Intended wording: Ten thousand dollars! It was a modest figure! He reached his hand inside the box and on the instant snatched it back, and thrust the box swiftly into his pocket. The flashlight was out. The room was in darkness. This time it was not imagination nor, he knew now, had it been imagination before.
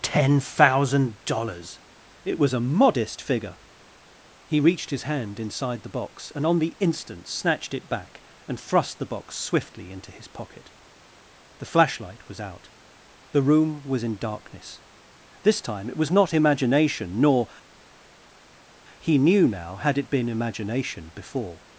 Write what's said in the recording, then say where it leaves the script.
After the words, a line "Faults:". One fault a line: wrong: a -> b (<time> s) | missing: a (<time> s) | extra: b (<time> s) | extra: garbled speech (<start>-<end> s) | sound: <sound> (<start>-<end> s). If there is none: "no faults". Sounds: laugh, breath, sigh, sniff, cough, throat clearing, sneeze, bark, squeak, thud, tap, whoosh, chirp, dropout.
Ten thousand dollars! It was a modest figure! He reached his hand inside the box and on the instant snatched it back, and thrust the box swiftly into his pocket. The flashlight was out. The room was in darkness. This time it was not imagination nor, he knew now, had it been imagination before.
Faults:
no faults